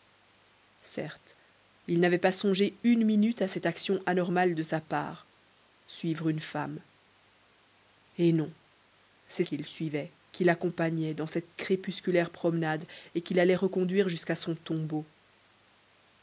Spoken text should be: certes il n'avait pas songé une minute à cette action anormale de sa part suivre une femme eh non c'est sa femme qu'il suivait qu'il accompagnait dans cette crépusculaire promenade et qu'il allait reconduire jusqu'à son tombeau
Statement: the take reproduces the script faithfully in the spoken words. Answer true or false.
false